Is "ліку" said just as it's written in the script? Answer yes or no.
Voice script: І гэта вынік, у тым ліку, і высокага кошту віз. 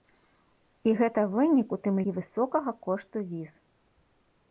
no